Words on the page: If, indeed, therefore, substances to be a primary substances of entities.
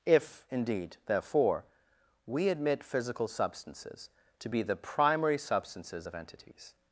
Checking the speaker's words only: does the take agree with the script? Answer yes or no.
no